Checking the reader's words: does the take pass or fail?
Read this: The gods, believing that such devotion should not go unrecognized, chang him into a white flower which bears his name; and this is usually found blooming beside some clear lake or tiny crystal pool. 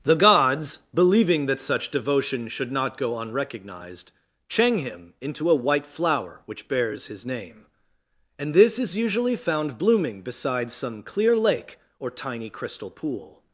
pass